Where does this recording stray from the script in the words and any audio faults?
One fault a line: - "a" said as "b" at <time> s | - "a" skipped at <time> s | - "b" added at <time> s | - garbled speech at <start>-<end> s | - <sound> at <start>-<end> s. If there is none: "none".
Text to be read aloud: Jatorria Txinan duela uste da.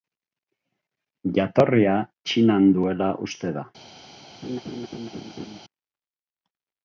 - laugh at 4.4-5.6 s